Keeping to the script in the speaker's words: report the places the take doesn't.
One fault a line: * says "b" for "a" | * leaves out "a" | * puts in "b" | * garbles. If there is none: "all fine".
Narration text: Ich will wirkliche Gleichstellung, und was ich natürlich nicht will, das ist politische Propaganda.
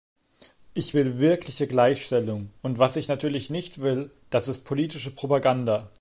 all fine